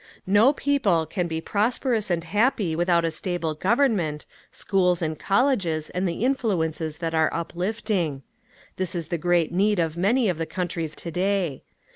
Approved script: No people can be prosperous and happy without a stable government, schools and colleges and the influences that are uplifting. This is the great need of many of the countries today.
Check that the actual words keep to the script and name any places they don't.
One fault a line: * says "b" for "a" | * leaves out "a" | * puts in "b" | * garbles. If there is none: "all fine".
all fine